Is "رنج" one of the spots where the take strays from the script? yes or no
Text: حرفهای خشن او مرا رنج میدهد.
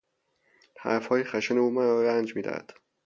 no